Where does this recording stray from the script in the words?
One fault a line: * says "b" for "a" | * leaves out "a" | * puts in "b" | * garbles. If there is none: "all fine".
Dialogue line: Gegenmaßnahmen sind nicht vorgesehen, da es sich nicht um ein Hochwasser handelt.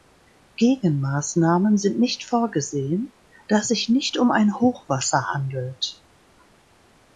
all fine